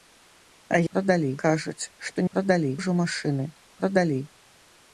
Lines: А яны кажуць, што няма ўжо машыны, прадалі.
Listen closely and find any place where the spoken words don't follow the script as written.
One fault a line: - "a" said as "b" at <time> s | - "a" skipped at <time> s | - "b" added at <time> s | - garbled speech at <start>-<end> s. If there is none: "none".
- "яны" said as "прадалі" at 0.9 s
- "няма" said as "прадалі" at 2.4 s